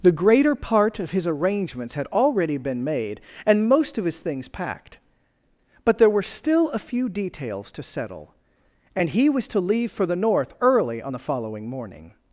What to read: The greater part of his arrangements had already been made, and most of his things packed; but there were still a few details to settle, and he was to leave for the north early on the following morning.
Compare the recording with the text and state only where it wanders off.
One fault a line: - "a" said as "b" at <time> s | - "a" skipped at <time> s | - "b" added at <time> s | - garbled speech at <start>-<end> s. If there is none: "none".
none